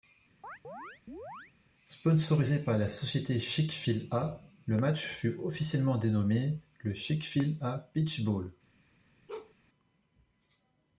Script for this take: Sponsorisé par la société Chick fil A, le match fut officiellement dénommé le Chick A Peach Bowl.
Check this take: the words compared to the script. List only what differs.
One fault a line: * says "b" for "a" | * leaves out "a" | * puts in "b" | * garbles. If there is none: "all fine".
* puts in "fil"